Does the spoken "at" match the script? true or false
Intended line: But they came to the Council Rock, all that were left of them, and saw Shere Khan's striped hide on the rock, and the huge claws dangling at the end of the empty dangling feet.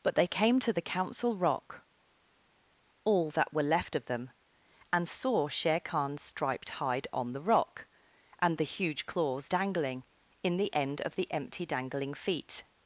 false